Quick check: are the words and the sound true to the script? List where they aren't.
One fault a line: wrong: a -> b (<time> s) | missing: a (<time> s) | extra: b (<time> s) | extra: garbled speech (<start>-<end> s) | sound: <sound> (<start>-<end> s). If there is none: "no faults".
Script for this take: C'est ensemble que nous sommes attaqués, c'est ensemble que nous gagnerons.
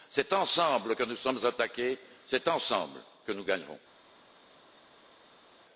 no faults